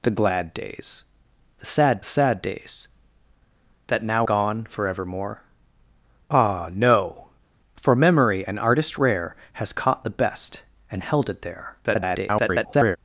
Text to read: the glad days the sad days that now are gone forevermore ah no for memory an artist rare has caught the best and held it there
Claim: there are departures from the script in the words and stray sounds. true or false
true